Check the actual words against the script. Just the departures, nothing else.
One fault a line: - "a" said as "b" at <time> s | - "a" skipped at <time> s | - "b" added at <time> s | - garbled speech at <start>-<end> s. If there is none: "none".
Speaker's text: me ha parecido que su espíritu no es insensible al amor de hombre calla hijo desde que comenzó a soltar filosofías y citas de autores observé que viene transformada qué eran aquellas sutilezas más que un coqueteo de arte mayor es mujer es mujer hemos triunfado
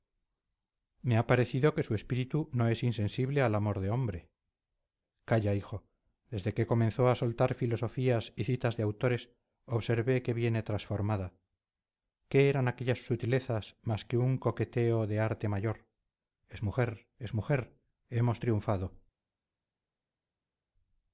none